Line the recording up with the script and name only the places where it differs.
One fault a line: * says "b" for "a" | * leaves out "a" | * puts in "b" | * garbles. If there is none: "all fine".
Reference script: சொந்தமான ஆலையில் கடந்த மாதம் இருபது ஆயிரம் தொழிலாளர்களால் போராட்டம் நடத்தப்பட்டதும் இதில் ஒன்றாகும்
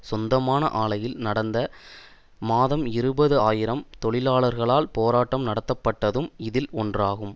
all fine